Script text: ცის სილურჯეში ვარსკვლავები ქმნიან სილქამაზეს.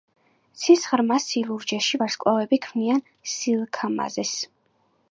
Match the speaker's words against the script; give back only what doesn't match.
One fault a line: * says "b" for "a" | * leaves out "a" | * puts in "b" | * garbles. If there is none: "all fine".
* puts in "ღრმა"